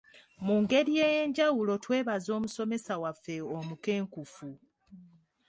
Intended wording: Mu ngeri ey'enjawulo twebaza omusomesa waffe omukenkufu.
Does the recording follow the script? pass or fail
pass